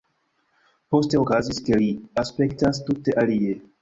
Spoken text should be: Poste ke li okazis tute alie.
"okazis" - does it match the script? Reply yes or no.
no